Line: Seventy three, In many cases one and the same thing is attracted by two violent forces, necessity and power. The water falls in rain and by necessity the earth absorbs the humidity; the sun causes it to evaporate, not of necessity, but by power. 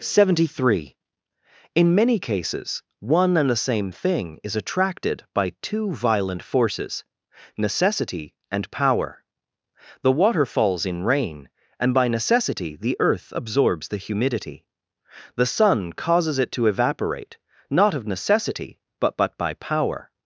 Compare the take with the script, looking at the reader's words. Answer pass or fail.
fail